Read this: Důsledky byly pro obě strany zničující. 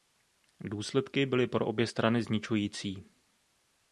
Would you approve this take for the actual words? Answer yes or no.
yes